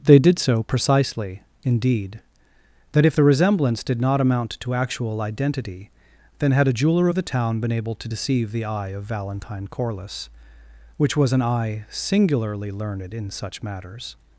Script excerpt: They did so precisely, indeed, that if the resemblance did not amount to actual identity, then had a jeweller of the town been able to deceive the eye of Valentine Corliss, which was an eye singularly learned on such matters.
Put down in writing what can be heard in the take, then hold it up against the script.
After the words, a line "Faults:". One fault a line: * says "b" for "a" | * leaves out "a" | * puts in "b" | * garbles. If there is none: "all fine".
They did so precisely, indeed, that if the resemblance did not amount to actual identity, then had a jeweller of the town been able to deceive the eye of Valentine Corliss, which was an eye singularly learned in such matters.
Faults:
* says "in" for "on"